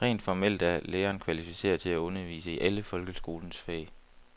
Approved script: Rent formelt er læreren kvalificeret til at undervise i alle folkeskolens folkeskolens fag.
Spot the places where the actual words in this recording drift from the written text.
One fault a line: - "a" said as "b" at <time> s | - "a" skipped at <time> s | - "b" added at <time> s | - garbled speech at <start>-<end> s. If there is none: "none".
- "folkeskolens" skipped at 3.6 s